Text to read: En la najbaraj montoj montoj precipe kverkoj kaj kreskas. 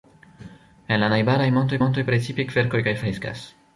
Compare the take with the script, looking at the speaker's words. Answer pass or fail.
pass